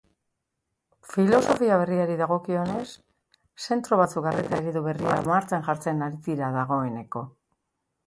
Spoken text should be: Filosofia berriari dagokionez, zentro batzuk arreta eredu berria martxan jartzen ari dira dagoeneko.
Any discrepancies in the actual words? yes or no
no